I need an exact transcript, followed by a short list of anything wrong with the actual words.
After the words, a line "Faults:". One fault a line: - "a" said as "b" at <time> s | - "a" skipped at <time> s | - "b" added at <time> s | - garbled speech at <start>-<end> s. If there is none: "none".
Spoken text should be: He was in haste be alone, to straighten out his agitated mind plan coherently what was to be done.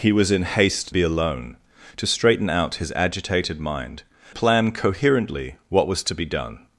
He was in haste be alone, to straighten out his agitated mind plan coherently what was to be done.
Faults:
none